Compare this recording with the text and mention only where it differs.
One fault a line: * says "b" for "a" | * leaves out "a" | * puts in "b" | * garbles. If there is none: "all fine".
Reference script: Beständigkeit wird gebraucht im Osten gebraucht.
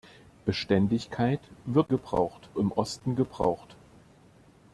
all fine